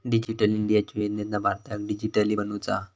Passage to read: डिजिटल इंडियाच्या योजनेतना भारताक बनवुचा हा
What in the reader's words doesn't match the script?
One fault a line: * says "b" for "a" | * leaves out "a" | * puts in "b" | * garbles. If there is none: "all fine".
* puts in "डीजिटली"